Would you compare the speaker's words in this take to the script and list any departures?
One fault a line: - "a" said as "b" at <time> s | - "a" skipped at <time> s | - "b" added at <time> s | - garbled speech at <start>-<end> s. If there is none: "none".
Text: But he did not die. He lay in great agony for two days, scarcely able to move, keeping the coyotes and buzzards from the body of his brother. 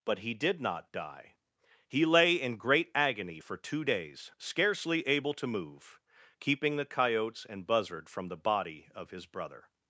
- "buzzards" said as "buzzard" at 7.6 s